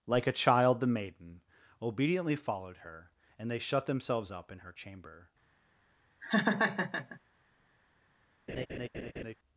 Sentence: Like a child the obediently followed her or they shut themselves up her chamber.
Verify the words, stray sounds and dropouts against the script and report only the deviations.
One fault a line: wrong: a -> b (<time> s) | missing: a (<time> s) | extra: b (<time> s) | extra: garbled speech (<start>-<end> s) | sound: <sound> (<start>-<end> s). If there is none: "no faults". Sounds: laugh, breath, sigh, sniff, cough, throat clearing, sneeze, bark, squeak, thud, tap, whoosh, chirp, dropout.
extra: maiden (0.9 s)
wrong: or -> and (3.4 s)
extra: in (4.5 s)
sound: laugh (6.2-7.2 s)
sound: laugh (8.5-9.3 s)